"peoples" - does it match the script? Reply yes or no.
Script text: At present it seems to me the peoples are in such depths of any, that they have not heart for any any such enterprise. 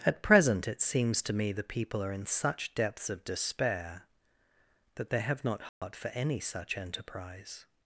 no